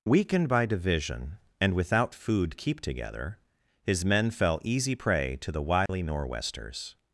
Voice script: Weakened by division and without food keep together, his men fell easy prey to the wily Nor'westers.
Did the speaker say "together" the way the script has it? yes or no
yes